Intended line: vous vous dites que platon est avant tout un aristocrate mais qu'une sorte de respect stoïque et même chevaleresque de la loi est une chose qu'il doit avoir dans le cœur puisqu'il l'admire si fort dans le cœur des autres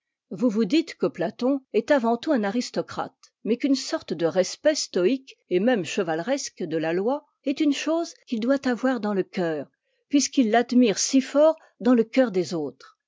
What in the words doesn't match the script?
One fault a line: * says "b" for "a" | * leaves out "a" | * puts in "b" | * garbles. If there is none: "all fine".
all fine